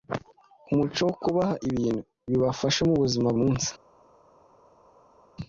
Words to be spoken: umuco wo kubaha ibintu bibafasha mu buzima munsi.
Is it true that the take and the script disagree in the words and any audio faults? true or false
false